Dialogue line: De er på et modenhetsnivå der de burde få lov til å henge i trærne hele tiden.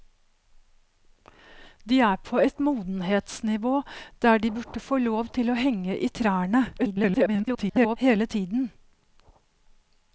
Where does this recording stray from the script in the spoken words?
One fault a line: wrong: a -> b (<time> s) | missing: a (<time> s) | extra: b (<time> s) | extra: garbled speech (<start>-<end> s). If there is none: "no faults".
extra: garbled speech (6.8-8.0 s)